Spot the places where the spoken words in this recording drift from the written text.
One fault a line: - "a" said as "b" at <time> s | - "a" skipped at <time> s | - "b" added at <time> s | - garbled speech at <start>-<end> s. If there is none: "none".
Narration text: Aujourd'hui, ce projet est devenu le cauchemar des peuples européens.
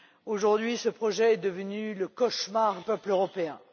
- "des" skipped at 2.8 s